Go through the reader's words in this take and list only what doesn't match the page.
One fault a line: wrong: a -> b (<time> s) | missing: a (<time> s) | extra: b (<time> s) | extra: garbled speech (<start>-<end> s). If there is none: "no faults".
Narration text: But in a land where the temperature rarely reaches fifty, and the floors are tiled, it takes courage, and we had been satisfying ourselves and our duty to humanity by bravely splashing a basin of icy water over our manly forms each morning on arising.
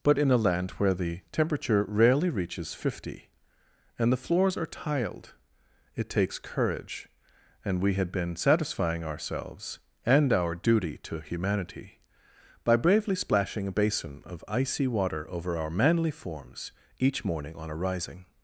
no faults